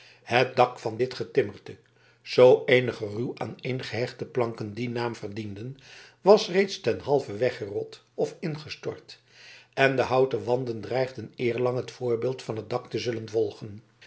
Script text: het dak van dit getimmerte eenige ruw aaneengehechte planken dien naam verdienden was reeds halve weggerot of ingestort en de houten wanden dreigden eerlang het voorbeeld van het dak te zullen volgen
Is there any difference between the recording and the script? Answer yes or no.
yes